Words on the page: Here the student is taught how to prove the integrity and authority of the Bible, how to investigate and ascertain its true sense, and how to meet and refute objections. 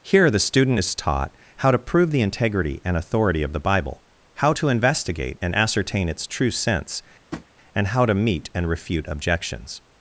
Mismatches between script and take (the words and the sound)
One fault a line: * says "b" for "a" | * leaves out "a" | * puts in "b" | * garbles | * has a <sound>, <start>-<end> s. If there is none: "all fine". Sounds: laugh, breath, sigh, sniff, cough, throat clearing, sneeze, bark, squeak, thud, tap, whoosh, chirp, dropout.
* has a tap, 7.3-7.5 s